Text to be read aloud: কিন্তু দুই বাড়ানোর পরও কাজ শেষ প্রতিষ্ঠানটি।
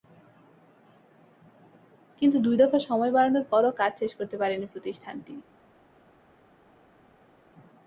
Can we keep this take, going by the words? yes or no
no